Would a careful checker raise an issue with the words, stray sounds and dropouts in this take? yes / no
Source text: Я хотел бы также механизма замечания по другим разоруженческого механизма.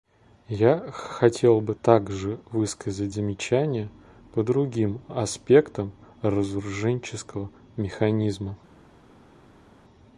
yes